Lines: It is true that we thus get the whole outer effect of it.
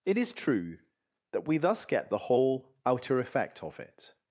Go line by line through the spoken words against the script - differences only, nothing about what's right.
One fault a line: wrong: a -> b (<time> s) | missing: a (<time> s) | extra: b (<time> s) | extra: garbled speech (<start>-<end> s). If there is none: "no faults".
no faults